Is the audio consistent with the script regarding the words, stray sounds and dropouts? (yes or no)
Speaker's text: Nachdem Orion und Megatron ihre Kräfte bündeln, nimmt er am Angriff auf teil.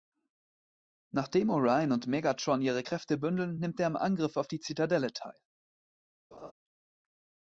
no